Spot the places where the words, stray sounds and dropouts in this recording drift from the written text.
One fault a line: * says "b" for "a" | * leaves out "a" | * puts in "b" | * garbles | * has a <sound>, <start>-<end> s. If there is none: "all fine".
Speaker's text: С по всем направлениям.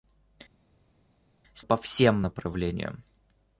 all fine